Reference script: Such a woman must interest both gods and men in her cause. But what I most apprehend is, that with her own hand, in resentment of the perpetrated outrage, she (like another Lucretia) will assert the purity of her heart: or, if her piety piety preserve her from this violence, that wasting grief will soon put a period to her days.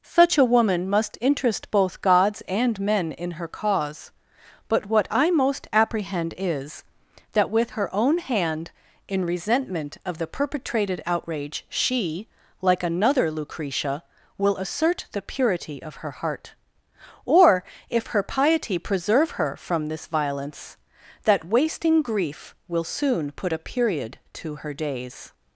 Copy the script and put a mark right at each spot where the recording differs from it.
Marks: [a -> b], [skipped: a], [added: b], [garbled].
Such a woman must interest both gods and men in her cause. But what I most apprehend is, that with her own hand, in resentment of the perpetrated outrage, she (like another Lucretia) will assert the purity of her heart: or, if her piety [skipped: piety] preserve her from this violence, that wasting grief will soon put a period to her days.